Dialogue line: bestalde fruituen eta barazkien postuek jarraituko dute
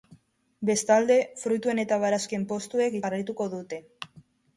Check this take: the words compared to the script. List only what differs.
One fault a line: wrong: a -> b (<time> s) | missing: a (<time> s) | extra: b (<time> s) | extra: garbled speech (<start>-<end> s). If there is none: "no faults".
no faults